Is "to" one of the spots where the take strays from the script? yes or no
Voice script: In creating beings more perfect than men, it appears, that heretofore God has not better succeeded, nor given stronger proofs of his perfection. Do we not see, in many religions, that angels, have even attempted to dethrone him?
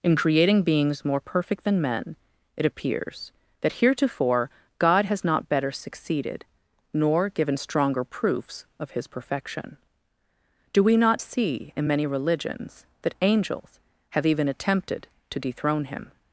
no